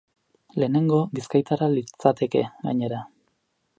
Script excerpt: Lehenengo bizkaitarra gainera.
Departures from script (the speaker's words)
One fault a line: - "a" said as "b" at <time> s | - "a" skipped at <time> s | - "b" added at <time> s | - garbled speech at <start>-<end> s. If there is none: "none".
- "litzateke" added at 1.7 s